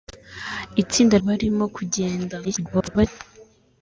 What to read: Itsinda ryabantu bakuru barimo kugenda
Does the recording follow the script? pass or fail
fail